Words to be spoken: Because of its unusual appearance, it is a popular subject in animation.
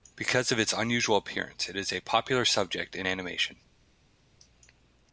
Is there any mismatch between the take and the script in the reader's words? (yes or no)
no